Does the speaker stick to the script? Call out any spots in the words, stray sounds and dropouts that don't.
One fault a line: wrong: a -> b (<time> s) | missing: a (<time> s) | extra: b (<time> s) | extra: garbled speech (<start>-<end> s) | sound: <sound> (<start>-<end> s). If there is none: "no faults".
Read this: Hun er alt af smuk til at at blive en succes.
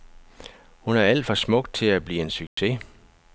wrong: af -> for (1.2 s)
missing: at (2.0 s)
sound: dropout (2.5-2.6 s)